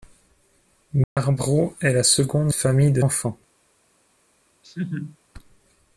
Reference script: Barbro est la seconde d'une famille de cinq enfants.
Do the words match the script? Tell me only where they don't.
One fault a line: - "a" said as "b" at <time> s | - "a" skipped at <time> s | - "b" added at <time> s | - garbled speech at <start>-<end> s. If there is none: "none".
- "d'une" skipped at 2.5 s
- "cinq" skipped at 3.0 s